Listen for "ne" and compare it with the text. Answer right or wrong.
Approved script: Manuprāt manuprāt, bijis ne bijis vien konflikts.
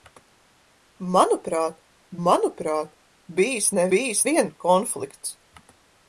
right